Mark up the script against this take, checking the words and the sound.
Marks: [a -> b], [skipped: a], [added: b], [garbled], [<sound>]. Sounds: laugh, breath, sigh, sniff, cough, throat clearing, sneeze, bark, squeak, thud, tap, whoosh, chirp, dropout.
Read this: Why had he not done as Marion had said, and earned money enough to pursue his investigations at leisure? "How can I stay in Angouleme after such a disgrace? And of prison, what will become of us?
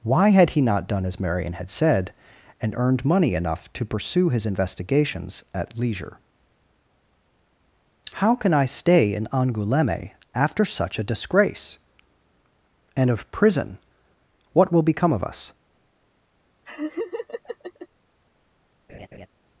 Why had he not done as Marion had said, and earned money enough to pursue his investigations at leisure? "How can I stay in Angouleme after such a disgrace? And of prison, what will become of us? [laugh] [laugh]